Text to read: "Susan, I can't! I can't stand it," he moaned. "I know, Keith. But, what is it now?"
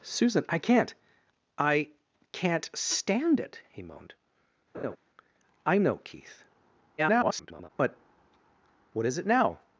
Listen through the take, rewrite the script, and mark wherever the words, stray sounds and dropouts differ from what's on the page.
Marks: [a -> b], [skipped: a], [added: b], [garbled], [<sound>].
"Susan, I can't! I can't stand it," he moaned. [laugh] "I know, Keith. [garbled] But, what is it now?"